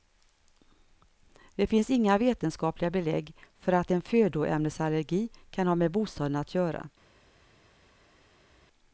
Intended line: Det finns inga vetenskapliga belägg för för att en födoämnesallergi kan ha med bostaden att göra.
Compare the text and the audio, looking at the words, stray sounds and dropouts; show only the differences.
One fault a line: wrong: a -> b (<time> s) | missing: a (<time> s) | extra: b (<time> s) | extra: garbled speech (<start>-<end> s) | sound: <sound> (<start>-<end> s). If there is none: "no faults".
missing: för (3.7 s)